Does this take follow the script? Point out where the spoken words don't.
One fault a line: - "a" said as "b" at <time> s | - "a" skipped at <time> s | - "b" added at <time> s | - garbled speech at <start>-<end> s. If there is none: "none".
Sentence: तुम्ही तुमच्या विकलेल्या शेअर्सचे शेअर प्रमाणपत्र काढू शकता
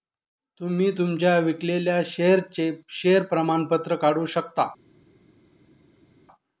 none